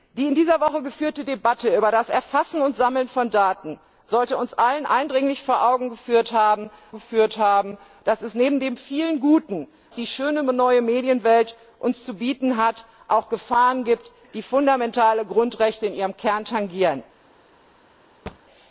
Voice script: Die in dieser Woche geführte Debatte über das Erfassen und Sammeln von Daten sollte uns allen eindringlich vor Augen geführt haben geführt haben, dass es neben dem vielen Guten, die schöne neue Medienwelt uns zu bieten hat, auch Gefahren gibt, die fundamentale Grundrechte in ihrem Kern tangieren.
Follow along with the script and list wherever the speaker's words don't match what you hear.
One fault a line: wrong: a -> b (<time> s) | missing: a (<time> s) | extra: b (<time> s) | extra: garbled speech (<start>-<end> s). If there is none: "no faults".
no faults